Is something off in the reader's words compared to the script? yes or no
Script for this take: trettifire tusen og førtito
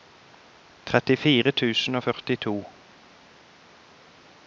no